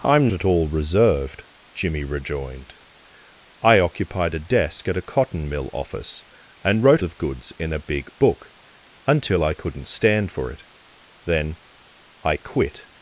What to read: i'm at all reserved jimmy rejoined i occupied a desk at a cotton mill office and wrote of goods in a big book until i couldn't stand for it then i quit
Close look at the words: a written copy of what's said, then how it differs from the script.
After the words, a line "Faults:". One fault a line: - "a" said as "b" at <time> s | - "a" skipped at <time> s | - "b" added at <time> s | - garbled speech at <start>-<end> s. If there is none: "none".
i'm at all reserved jimmy rejoined i occupied a desk at a cotton mill office and wrote of goods in a big book until i couldn't stand for it then i quit
Faults:
none